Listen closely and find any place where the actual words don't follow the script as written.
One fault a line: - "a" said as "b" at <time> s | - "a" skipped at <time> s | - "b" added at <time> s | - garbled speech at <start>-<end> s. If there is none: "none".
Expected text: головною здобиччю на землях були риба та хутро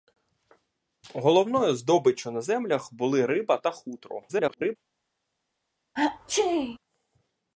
- garbled speech at 4.3-4.8 s